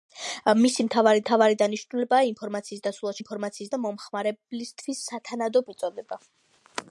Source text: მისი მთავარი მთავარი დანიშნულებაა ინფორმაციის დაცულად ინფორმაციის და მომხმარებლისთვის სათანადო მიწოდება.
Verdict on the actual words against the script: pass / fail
pass